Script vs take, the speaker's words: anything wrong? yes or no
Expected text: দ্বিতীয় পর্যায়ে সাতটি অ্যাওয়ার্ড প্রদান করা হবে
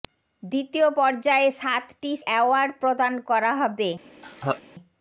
no